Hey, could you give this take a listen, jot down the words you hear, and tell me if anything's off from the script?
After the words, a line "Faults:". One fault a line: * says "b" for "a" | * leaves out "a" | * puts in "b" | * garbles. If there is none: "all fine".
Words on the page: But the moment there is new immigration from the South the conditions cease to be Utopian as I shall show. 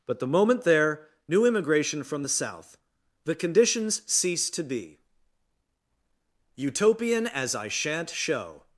But the moment there new immigration from the South the conditions cease to be Utopian as I shan't show.
Faults:
* leaves out "is"
* says "shan't" for "shall"